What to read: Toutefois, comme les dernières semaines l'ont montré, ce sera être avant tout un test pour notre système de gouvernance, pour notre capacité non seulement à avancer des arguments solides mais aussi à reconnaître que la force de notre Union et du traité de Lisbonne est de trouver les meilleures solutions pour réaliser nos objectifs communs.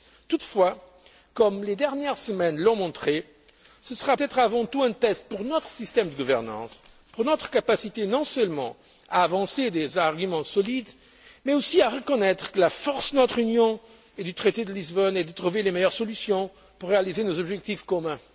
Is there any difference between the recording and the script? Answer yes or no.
no